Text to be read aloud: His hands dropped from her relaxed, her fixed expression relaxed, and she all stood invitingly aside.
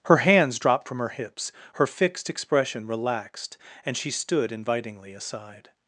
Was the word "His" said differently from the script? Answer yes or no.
yes